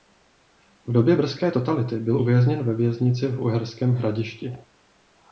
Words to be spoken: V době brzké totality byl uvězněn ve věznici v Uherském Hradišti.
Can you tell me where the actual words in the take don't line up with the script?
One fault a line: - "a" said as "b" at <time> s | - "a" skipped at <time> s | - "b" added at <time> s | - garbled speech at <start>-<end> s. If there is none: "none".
none